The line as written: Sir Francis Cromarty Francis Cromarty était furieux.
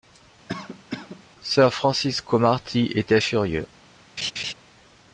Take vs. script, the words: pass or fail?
fail